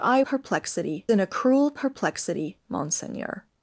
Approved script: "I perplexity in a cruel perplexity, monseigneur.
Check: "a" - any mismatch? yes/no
no